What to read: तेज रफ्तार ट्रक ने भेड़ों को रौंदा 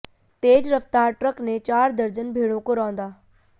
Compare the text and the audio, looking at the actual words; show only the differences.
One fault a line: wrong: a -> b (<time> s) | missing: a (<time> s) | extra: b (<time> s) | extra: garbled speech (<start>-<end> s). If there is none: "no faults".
extra: चार दर्जन (1.6 s)